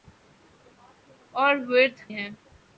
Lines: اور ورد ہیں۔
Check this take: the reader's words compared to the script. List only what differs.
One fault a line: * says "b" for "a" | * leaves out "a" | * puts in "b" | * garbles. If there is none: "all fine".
all fine